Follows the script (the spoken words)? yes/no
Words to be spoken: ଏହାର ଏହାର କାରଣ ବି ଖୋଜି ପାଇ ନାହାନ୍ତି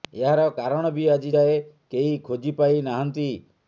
no